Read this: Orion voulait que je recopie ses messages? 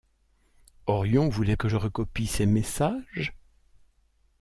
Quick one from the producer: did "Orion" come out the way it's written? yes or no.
yes